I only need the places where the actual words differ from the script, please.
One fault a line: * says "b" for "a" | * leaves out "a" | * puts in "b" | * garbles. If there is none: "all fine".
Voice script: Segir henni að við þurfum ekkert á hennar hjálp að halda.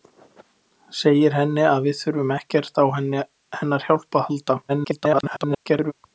* garbles